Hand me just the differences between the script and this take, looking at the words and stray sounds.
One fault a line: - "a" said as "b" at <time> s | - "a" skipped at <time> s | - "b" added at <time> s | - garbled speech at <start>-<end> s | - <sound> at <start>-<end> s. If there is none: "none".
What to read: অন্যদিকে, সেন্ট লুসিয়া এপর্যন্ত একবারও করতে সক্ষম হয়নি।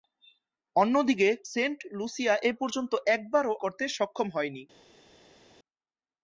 none